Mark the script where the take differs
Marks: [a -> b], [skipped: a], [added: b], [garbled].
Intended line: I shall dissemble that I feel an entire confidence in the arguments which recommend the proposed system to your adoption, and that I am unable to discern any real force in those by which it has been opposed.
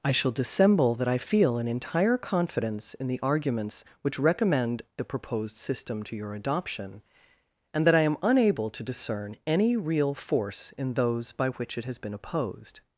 I shall dissemble that I feel an entire confidence in the arguments which recommend the proposed system to your adoption, and that I am unable to discern any real force in those by which it has been opposed.